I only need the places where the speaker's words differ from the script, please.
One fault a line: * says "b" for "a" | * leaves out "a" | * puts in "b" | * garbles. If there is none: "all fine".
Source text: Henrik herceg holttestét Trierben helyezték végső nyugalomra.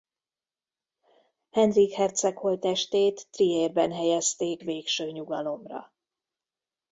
all fine